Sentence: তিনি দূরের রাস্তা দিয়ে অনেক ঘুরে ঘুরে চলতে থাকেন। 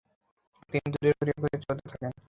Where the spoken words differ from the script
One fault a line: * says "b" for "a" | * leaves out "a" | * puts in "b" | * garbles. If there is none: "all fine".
* leaves out "রাস্তা দিয়ে অনেক"